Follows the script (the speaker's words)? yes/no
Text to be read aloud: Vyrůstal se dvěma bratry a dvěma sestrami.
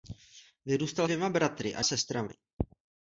no